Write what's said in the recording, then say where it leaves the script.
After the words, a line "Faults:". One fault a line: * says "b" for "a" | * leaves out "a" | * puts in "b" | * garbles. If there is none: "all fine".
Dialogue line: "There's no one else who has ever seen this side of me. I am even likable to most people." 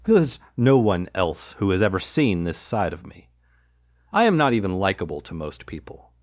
"There's no one else who has ever seen this side of me. I am not even likable to most people."
Faults:
* puts in "not"